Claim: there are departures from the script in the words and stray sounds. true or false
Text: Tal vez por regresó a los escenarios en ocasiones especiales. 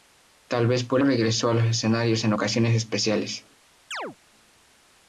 true